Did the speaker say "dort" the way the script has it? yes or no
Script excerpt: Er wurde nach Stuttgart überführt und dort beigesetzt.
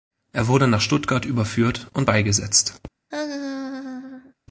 no